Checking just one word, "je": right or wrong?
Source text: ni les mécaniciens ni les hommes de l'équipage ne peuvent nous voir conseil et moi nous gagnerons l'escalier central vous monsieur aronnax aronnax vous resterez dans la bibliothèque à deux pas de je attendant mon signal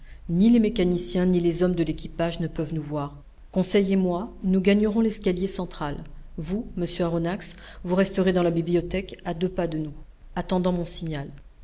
wrong